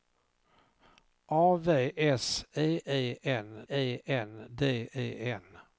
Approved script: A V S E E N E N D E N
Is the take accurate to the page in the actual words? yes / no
yes